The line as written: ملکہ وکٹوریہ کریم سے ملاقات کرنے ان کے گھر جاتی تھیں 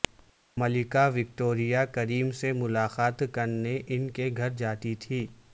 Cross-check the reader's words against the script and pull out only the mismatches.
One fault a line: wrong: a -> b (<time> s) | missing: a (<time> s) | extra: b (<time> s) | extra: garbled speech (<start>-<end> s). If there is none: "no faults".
no faults